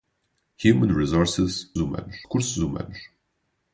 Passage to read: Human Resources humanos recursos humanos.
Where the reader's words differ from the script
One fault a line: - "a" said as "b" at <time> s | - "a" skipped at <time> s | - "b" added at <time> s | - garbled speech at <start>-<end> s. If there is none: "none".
none